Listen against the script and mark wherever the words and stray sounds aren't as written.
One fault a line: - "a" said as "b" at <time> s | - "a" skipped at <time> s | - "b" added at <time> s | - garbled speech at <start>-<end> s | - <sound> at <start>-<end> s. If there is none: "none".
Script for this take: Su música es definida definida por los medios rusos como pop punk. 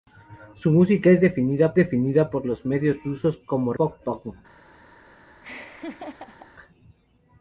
- laugh at 5.4-6.5 s